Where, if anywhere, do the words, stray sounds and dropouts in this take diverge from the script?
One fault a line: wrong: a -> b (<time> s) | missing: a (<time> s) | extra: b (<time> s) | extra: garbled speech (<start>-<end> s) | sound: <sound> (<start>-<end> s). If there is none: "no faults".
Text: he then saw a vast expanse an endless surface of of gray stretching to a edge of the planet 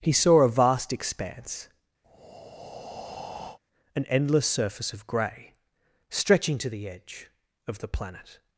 missing: then (0.1 s)
sound: breath (2.0-3.6 s)
missing: of (5.1 s)
wrong: a -> the (6.7 s)